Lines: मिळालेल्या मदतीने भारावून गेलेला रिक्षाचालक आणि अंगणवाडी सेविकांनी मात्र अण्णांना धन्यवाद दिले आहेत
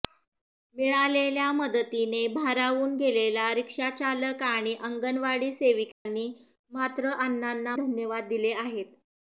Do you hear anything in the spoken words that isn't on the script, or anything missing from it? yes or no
no